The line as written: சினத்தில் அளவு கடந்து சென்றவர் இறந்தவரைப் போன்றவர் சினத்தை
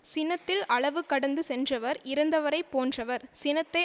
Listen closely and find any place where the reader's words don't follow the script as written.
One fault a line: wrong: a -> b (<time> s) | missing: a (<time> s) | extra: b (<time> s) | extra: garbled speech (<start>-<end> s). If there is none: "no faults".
no faults